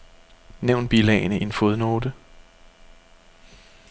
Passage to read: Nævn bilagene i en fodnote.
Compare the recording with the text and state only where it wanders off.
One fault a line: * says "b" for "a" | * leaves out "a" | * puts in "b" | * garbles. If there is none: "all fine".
all fine